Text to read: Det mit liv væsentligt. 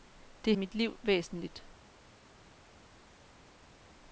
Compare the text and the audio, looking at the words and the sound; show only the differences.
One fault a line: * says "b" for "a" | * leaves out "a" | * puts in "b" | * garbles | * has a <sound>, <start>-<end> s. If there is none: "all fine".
all fine